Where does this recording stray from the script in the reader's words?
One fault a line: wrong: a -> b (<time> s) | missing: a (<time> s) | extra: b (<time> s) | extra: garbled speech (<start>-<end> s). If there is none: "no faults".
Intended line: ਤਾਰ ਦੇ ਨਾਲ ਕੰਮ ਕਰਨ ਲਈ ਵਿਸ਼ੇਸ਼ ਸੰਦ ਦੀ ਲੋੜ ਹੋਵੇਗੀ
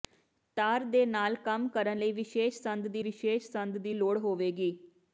extra: ਵਿਸ਼ੇਸ਼ ਸੰਦ ਦੀ (3.0 s)